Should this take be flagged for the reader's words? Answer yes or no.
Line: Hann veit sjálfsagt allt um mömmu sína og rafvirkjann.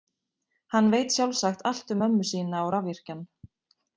no